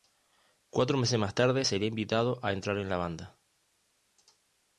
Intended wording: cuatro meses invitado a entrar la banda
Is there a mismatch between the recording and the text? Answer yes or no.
yes